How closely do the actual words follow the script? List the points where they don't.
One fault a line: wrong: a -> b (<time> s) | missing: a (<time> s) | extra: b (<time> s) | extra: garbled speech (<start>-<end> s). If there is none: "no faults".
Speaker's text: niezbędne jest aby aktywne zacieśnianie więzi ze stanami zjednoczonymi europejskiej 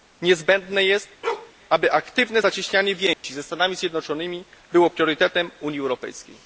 extra: było priorytetem unii (4.7 s)